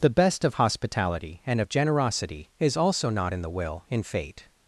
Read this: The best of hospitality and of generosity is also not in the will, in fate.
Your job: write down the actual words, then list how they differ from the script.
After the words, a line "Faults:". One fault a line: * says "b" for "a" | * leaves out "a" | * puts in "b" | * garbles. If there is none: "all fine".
The best of hospitality and of generosity is also not in the will, in fate.
Faults:
all fine